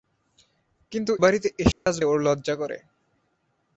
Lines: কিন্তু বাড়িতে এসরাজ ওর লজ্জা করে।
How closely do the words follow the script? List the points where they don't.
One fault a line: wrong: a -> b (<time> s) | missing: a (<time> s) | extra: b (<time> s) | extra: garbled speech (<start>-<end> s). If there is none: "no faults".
no faults